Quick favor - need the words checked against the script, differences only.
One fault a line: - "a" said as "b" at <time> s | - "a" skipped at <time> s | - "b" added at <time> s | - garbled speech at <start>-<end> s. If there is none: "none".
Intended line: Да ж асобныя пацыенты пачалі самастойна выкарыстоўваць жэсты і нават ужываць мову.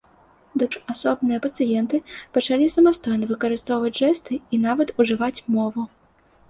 none